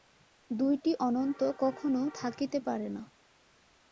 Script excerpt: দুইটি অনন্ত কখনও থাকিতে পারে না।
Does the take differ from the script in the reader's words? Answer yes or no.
no